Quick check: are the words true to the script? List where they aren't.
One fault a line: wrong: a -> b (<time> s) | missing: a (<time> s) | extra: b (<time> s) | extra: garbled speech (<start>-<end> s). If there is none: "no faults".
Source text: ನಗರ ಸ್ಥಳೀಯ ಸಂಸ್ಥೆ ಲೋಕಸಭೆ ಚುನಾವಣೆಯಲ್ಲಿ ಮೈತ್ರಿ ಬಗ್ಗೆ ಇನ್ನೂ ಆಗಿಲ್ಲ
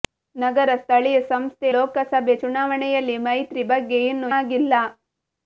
no faults